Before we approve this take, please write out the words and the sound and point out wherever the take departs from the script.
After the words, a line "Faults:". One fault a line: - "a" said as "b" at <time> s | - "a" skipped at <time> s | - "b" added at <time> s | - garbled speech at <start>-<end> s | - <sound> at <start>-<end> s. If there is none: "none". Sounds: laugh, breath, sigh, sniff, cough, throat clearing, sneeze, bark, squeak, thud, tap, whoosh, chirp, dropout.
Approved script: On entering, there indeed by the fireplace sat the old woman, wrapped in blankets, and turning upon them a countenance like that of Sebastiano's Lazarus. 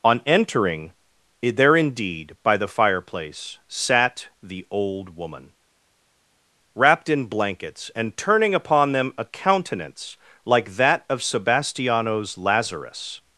On entering, there indeed by the fireplace sat the old woman, wrapped in blankets, and turning upon them a countenance like that of Sebastiano's Lazarus.
Faults:
none